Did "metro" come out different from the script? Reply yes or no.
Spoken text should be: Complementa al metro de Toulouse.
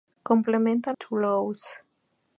yes